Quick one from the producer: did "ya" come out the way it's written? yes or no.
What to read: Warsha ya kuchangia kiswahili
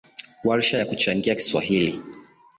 yes